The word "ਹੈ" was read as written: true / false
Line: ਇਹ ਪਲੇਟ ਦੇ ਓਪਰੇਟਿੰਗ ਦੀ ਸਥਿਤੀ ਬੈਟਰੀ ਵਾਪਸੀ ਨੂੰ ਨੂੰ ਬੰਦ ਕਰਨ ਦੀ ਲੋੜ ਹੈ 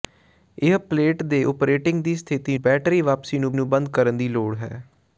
true